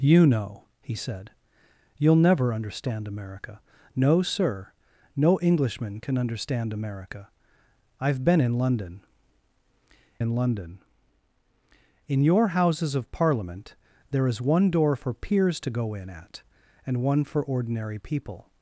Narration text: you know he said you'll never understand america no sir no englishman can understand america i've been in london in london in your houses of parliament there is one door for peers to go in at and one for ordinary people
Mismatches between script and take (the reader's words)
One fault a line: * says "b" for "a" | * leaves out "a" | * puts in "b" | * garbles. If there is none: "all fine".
all fine